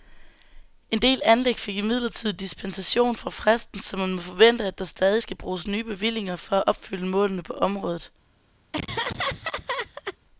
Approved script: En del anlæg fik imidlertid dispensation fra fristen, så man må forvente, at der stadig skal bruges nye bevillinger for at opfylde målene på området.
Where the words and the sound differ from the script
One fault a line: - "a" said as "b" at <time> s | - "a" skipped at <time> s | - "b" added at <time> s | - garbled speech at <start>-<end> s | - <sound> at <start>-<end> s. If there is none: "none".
- laugh at 8.7-10.2 s